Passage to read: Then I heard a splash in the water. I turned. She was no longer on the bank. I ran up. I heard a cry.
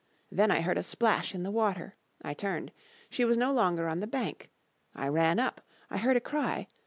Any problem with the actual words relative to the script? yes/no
no